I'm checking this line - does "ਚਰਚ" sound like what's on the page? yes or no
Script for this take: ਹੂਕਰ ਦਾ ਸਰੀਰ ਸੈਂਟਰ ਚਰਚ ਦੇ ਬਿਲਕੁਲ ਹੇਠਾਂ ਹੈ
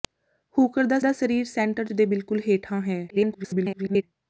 no